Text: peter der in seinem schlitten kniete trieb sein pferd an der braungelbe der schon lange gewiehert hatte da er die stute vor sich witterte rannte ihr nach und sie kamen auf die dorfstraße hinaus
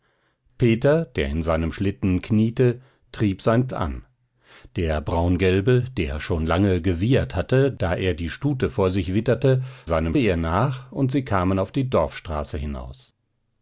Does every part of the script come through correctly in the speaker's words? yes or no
no